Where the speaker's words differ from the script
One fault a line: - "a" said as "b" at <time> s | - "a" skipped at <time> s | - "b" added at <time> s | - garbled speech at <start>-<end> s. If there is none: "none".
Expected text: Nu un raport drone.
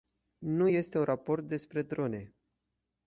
- "este" added at 0.7 s
- "despre" added at 1.5 s